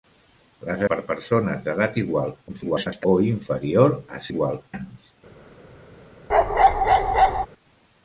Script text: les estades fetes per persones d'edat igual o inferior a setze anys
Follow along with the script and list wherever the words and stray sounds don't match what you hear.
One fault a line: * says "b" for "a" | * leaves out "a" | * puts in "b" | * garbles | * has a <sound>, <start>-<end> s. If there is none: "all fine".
* leaves out "estades fetes"
* garbles
* says "igual" for "setze"
* has a bark, 6.3-7.5 s